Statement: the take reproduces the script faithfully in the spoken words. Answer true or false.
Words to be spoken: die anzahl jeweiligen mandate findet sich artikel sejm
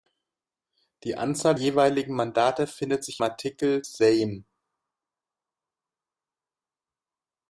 true